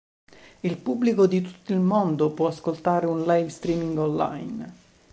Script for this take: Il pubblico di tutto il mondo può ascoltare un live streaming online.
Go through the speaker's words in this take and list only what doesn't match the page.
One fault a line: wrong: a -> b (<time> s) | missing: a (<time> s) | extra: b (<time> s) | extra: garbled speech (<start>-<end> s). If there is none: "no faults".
no faults